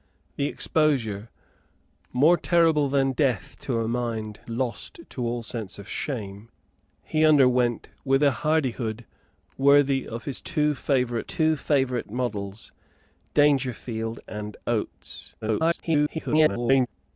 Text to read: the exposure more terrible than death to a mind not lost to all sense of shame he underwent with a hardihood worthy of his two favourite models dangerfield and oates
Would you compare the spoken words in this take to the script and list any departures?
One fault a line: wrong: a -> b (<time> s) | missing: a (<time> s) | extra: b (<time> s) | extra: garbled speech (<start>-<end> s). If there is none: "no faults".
missing: not (4.4 s)
extra: two favourite (11.2 s)
extra: garbled speech (15.4-16.9 s)